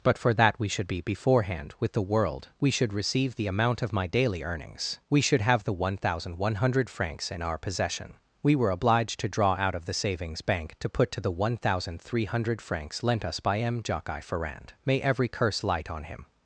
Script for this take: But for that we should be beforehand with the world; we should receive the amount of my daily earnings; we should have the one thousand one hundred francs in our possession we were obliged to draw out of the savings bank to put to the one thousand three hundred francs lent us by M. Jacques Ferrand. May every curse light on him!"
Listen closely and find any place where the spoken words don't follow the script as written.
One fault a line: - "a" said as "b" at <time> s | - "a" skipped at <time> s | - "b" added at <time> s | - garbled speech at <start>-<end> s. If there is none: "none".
none